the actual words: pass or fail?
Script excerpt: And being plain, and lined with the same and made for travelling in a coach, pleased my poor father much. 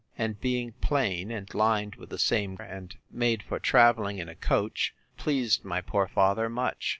pass